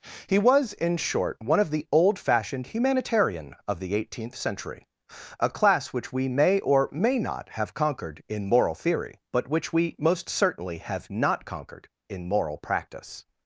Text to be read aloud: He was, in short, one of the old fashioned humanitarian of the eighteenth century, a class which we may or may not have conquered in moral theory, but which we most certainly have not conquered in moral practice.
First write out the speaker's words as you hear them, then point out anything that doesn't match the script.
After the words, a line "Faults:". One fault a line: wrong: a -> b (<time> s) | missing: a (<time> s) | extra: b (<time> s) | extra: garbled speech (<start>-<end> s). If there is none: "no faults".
He was, in short, one of the old fashioned humanitarian of the eighteenth century, a class which we may or may not have conquered in moral theory, but which we most certainly have not conquered in moral practice.
Faults:
no faults